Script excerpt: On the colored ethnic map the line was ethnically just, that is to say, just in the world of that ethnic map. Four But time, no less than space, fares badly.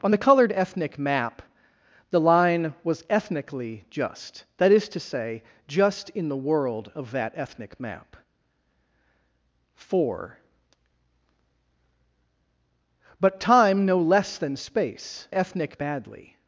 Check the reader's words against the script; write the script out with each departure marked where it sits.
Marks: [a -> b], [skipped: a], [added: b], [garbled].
On the colored ethnic map the line was ethnically just, that is to say, just in the world of that ethnic map. Four But time, no less than space, [fares -> ethnic] badly.